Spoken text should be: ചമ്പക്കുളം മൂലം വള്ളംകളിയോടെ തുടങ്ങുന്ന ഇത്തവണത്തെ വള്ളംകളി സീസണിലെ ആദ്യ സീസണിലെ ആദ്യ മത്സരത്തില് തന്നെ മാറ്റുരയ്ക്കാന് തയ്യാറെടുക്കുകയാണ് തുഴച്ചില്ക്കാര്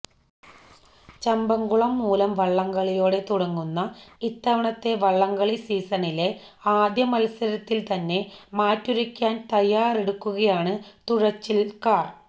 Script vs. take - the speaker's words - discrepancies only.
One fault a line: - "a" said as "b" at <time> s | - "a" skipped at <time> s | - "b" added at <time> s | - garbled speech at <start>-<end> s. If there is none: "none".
- "സീസണിലെ ആദ്യ" skipped at 7.0 s